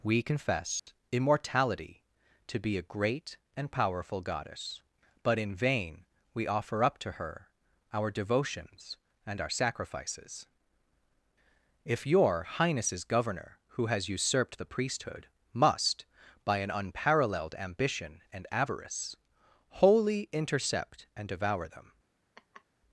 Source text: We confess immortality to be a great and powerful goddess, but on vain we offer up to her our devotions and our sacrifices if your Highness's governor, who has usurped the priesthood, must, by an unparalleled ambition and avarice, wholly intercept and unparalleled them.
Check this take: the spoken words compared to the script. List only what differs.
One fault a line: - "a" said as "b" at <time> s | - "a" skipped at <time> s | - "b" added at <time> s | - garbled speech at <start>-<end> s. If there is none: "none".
- "on" said as "in" at 5.4 s
- "unparalleled" said as "devour" at 21.3 s